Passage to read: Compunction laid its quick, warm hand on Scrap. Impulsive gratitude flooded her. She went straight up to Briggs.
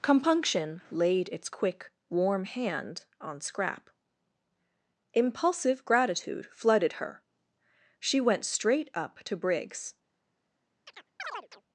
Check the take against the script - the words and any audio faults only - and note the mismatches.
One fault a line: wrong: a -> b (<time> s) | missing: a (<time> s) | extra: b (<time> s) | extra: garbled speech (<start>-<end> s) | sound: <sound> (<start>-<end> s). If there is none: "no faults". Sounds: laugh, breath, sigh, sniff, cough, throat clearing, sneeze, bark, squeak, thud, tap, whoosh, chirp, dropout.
sound: chirp (10.9-11.6 s)